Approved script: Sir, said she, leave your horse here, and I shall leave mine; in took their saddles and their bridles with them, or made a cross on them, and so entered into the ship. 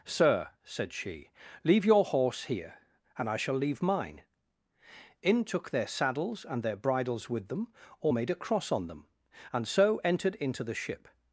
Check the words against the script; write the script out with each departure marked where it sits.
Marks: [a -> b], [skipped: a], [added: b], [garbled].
Sir, said she, leave your horse here, and I shall leave mine; in took their saddles and their bridles with them, or made a cross on them, and so entered into the ship.